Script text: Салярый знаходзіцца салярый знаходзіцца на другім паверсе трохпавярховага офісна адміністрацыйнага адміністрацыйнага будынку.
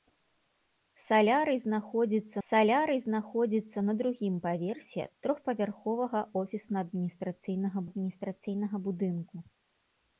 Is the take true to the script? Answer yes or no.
yes